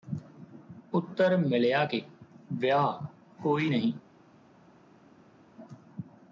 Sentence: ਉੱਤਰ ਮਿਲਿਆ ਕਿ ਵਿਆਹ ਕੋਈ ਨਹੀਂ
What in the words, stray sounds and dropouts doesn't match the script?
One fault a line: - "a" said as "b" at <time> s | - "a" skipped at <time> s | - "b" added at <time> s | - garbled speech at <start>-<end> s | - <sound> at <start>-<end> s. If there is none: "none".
none